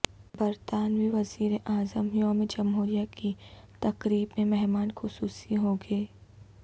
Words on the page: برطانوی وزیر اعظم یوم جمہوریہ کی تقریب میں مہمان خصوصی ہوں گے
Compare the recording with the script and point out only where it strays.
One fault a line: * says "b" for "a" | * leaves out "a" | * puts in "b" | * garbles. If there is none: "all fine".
all fine